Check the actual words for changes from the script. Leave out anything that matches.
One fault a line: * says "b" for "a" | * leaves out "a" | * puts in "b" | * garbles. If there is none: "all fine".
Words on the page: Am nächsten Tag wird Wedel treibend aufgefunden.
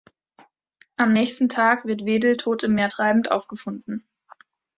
* puts in "tot im Meer"